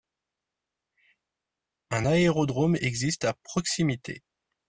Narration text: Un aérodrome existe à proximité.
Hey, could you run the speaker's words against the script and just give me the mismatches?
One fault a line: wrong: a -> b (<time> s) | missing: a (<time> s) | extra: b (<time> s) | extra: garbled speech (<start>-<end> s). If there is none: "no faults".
no faults